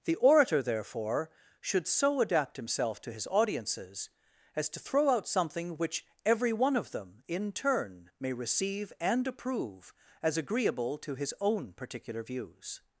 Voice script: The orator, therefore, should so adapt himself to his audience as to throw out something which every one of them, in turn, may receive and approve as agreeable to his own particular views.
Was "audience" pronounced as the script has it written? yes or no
no